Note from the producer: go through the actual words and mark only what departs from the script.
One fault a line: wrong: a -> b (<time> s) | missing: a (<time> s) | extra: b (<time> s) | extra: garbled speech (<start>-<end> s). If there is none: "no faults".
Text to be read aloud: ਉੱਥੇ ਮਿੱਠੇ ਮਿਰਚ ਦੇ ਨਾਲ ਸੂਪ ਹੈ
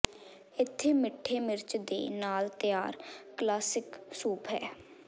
wrong: ਉੱਥੇ -> ਇੱਥੇ (0.6 s)
extra: ਤਿਆਰ ਕਲਾਸਿਕ (2.6 s)